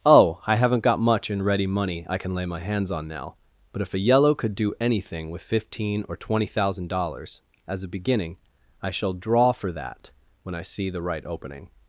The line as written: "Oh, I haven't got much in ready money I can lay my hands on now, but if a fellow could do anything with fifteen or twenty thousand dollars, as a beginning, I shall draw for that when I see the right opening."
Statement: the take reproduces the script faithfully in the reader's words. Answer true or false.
false